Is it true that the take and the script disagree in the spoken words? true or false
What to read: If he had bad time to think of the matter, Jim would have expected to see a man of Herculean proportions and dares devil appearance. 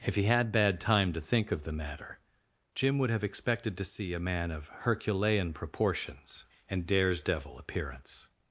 false